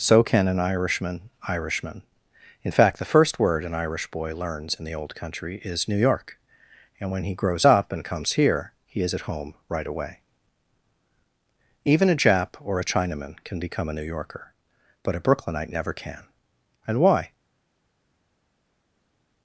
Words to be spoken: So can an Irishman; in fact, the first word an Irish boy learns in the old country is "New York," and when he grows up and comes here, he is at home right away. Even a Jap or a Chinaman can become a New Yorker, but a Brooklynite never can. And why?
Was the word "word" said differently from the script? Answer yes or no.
no